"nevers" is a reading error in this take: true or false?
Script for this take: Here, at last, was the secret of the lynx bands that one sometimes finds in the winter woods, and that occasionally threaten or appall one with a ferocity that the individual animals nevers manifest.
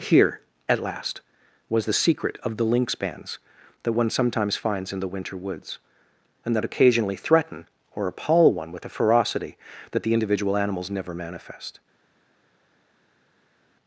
true